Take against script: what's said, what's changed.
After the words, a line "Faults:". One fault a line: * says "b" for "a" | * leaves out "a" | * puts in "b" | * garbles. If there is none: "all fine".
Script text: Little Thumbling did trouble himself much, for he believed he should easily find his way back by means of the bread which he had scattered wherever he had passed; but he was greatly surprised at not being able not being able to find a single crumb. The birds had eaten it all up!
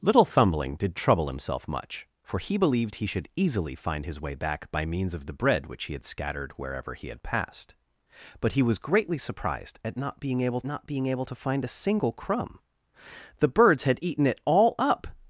Little Thumbling did trouble himself much, for he believed he should easily find his way back by means of the bread which he had scattered wherever he had passed; but he was greatly surprised at not being able not being able to find a single crumb. The birds had eaten it all up!
Faults:
all fine